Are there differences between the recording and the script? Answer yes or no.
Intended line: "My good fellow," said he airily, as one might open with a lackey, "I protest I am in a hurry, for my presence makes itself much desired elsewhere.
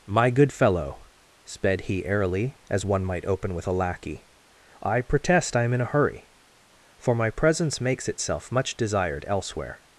yes